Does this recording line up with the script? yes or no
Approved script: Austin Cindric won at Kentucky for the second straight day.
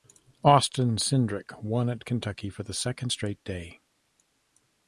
yes